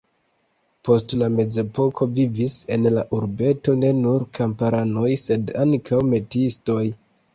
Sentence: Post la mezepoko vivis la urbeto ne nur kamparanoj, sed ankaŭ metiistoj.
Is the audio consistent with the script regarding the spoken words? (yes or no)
no